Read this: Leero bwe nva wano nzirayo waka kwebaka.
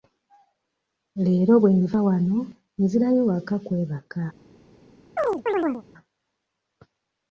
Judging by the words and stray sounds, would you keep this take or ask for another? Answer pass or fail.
fail